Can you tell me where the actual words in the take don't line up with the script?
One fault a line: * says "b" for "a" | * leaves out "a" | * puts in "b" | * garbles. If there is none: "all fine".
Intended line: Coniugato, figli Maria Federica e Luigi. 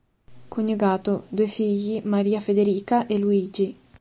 * puts in "due"